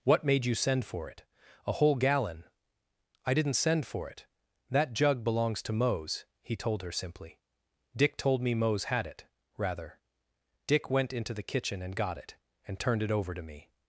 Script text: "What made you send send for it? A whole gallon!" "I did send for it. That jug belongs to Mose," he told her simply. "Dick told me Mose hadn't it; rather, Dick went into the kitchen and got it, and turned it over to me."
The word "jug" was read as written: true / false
true